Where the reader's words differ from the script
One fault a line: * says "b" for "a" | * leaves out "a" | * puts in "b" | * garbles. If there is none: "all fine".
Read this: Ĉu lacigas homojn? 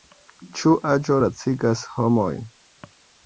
* puts in "aĝo"